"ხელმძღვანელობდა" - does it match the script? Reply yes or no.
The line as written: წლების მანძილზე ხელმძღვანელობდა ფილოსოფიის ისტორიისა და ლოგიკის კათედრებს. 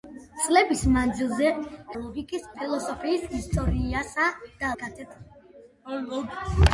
no